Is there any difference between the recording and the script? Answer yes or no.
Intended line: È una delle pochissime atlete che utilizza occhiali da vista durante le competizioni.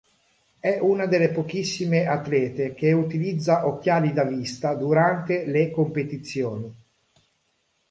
no